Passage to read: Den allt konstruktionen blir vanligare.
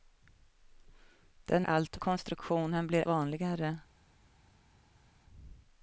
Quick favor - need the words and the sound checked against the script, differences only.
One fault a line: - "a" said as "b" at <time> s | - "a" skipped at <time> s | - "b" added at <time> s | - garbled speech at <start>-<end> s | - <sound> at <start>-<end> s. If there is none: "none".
none